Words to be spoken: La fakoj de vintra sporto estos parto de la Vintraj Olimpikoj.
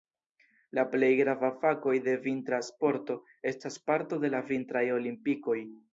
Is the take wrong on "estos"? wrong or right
wrong